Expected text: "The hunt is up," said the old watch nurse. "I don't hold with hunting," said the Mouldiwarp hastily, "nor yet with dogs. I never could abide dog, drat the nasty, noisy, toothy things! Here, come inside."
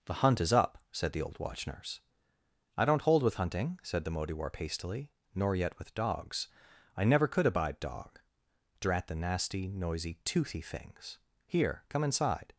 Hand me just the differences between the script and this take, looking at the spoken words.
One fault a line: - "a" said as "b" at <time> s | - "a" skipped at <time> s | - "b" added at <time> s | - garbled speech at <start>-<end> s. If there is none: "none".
none